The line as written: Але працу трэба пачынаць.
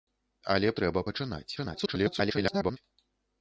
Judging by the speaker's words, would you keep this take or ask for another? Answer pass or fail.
fail